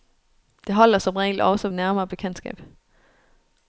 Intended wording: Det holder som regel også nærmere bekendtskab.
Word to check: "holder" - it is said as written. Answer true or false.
true